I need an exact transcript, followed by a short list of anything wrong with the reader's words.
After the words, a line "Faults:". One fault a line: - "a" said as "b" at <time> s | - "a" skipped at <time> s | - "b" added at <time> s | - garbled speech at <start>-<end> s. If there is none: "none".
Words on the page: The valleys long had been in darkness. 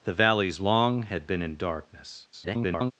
The valleys long had been in darkness. [garbled]
Faults:
- garbled speech at 2.3-2.9 s